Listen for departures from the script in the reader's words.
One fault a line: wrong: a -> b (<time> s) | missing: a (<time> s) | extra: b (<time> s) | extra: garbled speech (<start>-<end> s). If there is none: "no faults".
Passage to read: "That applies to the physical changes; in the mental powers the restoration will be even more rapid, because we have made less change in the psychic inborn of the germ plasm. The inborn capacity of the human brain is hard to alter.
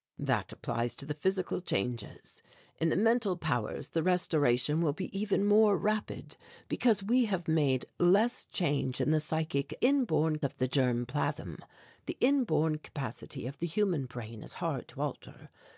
no faults